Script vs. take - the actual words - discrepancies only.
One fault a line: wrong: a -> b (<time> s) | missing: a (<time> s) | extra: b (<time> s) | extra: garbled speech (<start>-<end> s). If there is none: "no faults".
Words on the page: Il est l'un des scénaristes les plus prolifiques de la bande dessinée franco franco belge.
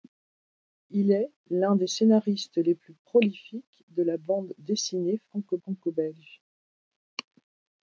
no faults